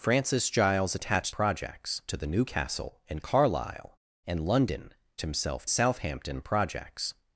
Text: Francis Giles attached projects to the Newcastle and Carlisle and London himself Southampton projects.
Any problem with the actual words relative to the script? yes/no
no